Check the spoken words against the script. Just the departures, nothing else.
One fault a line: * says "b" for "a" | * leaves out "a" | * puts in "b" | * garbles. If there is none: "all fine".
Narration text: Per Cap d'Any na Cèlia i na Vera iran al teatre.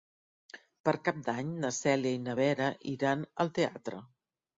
all fine